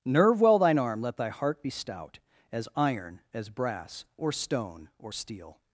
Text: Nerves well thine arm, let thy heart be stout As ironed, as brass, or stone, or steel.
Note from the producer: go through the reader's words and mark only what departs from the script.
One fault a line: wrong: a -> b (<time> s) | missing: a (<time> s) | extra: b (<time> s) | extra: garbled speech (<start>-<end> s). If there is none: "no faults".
wrong: Nerves -> Nerve (0.0 s)
wrong: ironed -> iron (2.7 s)